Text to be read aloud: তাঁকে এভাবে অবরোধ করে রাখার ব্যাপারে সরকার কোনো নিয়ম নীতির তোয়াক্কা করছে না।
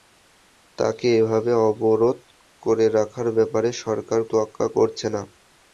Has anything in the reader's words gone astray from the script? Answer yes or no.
yes